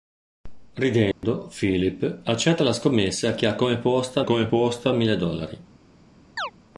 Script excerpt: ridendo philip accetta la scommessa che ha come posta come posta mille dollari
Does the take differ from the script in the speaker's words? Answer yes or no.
no